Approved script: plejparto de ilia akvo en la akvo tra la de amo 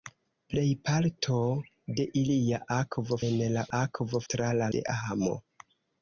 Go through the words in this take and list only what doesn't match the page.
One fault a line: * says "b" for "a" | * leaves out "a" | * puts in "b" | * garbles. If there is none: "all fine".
all fine